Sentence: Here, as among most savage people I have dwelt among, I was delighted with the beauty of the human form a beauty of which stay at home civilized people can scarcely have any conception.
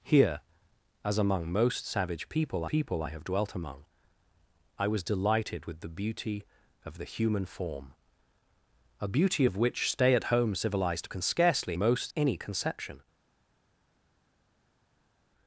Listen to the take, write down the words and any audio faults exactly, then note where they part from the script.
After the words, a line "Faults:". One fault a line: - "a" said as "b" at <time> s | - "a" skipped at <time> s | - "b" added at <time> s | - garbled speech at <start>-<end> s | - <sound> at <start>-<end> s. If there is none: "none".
Here, as among most savage people people I have dwelt among, I was delighted with the beauty of the human form a beauty of which stay at home civilized can scarcely most any conception.
Faults:
- "people" added at 2.7 s
- "people" skipped at 11.1 s
- "have" said as "most" at 11.8 s